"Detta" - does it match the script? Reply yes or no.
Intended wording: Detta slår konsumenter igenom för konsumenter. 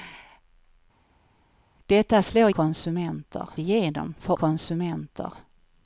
yes